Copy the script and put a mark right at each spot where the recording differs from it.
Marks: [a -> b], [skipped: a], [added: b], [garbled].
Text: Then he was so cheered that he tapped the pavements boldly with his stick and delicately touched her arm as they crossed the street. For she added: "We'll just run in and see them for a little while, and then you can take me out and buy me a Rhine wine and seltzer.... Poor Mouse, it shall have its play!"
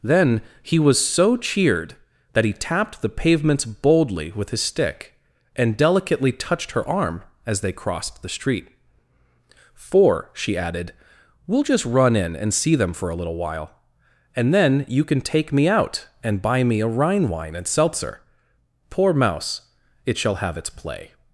Then he was so cheered that he tapped the pavements boldly with his stick and delicately touched her arm as they crossed the street. For she added: "We'll just run in and see them for a little while, and then you can take me out and buy me a Rhine wine and seltzer.... Poor Mouse, it shall have its play!"